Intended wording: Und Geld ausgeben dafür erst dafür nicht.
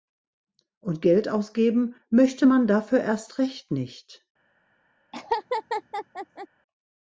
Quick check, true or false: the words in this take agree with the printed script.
false